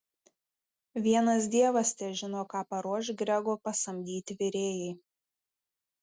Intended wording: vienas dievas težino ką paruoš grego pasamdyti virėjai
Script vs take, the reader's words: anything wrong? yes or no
no